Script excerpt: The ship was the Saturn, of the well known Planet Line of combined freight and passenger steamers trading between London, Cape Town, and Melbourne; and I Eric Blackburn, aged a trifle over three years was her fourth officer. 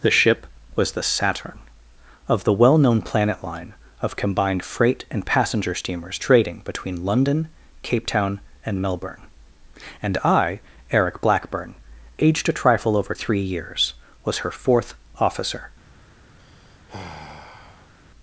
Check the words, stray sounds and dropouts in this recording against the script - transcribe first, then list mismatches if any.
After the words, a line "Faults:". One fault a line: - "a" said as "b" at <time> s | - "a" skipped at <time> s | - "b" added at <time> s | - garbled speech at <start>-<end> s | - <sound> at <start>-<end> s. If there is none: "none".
The ship was the Saturn, of the well known Planet Line of combined freight and passenger steamers trading between London, Cape Town, and Melbourne; and I Eric Blackburn, aged a trifle over three years was her fourth officer.
Faults:
- sigh at 16.4-17.9 s